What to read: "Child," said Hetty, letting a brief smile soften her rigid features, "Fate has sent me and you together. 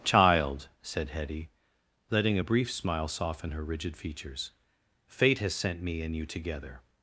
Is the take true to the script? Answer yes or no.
yes